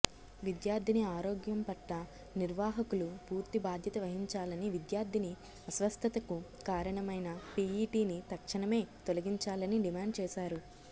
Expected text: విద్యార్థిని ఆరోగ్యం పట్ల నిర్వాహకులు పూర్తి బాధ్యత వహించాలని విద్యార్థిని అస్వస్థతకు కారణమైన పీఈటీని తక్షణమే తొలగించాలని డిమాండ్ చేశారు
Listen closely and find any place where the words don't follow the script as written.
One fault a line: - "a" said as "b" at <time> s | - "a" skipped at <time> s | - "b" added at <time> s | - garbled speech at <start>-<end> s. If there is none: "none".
none